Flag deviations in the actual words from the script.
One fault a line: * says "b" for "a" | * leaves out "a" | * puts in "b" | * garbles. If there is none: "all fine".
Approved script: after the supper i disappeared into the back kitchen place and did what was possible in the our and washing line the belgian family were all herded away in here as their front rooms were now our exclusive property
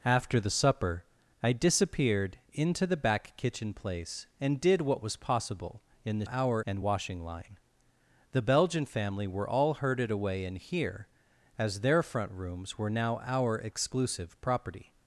all fine